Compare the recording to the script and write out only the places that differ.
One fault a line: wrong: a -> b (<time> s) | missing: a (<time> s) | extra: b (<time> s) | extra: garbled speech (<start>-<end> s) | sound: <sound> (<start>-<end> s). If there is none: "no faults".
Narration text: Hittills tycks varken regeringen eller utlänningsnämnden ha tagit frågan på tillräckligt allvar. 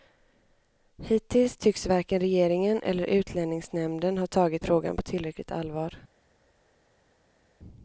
no faults